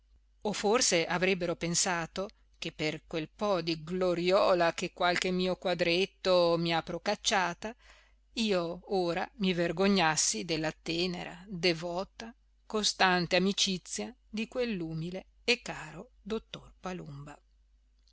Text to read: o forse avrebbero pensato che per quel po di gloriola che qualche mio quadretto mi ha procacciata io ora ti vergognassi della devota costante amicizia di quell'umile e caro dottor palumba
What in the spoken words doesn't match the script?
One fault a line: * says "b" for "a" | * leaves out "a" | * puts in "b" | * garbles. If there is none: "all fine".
* says "mi" for "ti"
* puts in "tenera"